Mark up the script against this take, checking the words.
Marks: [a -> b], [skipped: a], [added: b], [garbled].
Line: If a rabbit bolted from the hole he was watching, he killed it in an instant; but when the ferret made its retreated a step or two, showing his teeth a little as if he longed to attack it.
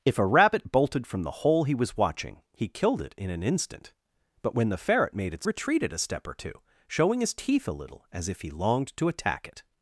If a rabbit bolted from the hole he was watching, he killed it in an instant; but when the ferret made its retreated a step or two, showing his teeth a little as if he longed to attack it.